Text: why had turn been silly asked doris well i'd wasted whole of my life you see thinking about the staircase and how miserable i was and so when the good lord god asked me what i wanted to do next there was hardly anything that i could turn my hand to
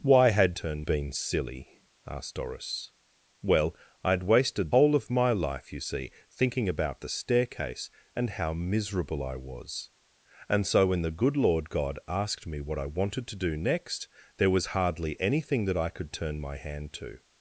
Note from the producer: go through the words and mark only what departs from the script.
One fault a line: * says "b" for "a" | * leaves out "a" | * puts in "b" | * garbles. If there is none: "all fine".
all fine